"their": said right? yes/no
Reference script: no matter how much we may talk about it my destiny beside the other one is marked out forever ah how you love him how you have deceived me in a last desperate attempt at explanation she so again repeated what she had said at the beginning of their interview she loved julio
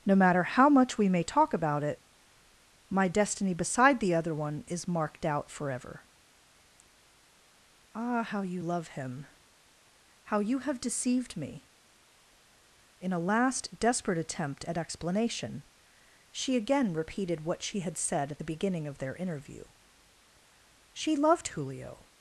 yes